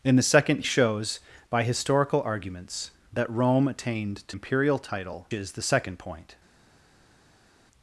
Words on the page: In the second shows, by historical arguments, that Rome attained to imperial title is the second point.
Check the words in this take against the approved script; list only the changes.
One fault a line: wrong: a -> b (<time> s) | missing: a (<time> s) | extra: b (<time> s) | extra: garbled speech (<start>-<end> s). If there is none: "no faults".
no faults